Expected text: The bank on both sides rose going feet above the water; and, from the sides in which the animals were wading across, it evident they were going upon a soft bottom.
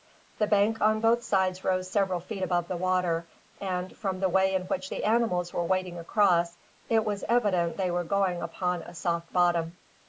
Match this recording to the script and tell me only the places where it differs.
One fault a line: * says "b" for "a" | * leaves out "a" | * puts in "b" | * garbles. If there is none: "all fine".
* says "several" for "going"
* says "way" for "sides"
* puts in "was"